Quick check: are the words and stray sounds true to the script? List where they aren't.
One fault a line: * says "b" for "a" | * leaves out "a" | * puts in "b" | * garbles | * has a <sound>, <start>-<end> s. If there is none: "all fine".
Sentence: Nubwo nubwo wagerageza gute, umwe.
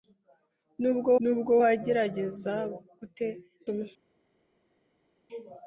all fine